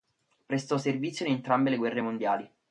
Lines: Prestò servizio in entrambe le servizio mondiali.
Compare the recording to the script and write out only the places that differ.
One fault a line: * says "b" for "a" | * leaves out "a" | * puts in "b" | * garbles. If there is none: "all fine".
* says "guerre" for "servizio"